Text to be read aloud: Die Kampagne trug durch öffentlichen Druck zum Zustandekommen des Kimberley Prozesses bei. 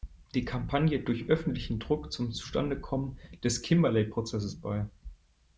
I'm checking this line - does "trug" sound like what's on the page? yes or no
no